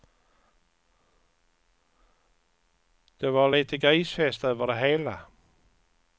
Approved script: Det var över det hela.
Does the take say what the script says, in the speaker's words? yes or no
no